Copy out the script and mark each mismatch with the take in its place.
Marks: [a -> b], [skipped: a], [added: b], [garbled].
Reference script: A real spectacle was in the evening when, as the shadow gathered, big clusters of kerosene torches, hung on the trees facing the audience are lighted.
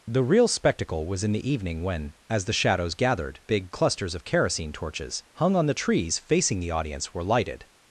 [A -> The] real spectacle was in the evening when, as the [shadow -> shadows] gathered, big clusters of kerosene torches, hung on the trees facing the audience [are -> were] lighted.